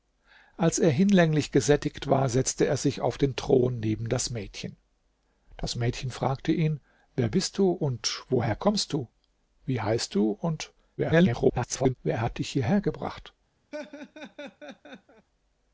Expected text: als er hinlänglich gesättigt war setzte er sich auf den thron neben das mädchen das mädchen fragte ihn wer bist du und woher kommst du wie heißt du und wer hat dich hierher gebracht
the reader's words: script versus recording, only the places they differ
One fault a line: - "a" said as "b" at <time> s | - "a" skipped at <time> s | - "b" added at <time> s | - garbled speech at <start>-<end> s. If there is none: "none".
- garbled speech at 11.0-11.9 s